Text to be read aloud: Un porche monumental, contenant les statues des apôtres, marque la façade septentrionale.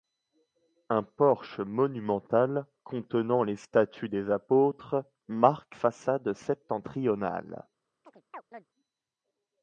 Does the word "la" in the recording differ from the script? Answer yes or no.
yes